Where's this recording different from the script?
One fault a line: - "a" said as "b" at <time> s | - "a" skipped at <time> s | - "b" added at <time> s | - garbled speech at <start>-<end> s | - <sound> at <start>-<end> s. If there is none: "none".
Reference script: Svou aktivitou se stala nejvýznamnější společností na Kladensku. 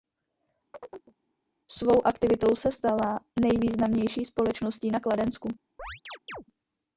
- chirp at 0.7-1.1 s
- chirp at 5.8-6.4 s